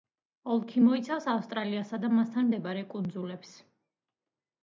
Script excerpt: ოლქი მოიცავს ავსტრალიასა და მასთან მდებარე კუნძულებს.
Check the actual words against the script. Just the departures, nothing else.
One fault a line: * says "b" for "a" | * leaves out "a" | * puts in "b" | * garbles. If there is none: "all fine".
all fine